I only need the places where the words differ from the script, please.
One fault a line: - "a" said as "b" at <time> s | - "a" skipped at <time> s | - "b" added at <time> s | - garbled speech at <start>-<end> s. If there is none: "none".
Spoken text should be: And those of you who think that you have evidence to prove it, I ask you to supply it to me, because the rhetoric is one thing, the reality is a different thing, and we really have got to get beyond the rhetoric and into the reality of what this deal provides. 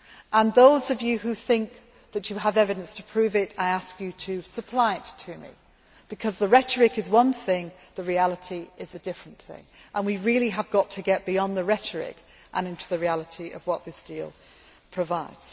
none